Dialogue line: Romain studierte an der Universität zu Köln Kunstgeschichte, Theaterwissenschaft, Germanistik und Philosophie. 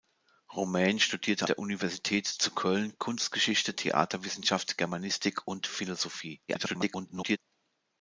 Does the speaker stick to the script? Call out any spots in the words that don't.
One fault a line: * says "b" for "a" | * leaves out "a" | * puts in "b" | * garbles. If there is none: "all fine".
* leaves out "an"
* garbles